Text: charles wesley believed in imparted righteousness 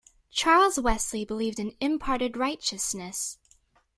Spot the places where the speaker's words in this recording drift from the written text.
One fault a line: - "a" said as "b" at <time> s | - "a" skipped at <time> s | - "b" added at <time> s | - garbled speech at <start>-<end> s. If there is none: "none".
none